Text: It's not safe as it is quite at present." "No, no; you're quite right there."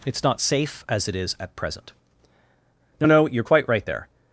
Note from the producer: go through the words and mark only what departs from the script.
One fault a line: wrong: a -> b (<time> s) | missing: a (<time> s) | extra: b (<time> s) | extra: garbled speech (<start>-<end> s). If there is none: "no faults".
missing: quite (1.4 s)